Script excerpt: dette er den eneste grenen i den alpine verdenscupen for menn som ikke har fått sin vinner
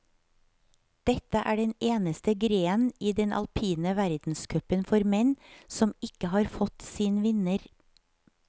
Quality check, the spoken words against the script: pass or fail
pass